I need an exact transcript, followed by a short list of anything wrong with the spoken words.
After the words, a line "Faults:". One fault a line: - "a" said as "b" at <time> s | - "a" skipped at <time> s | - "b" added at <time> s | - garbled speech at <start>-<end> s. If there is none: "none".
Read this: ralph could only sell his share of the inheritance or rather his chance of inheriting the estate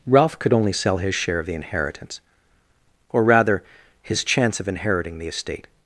ralph could only sell his share of the inheritance or rather his chance of inheriting the estate
Faults:
none